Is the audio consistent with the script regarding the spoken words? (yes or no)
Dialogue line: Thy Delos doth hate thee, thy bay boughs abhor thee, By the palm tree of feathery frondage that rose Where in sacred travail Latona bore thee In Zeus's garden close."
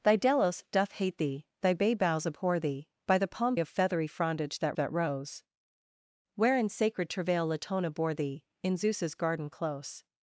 no